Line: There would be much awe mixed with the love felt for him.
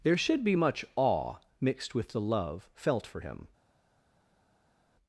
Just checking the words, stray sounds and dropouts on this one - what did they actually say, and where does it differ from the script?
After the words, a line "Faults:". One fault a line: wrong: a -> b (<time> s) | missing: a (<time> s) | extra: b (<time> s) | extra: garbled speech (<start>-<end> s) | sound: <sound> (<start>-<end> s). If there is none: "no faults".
There should be much awe mixed with the love felt for him.
Faults:
wrong: would -> should (0.2 s)